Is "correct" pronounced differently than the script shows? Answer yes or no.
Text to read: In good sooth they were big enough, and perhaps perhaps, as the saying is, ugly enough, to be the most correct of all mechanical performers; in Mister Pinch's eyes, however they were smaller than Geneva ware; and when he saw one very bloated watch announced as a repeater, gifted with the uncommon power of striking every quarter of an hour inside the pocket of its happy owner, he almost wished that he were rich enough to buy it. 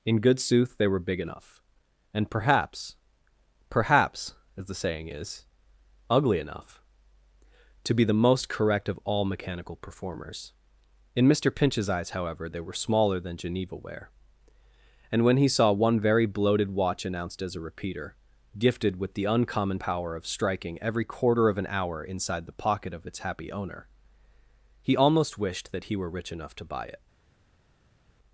no